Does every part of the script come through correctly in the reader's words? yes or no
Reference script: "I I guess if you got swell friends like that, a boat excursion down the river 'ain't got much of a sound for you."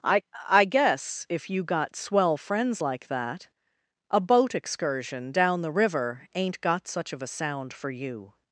no